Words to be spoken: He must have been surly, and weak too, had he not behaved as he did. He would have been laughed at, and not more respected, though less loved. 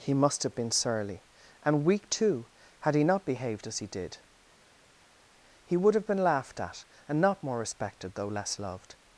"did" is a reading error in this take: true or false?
false